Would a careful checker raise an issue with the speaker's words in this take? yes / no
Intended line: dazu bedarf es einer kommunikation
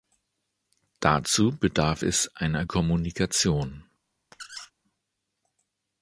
no